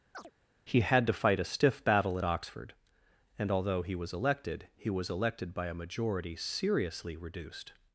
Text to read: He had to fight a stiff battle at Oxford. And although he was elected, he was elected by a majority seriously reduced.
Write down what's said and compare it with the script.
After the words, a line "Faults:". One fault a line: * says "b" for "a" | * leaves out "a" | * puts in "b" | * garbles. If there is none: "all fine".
He had to fight a stiff battle at Oxford. And although he was elected, he was elected by a majority seriously reduced.
Faults:
all fine